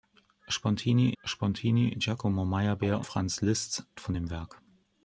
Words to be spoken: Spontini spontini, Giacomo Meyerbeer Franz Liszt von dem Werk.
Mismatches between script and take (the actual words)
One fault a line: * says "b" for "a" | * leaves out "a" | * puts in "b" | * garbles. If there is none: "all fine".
all fine